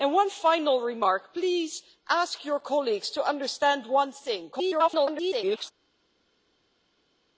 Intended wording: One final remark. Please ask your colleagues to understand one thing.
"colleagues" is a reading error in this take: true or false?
false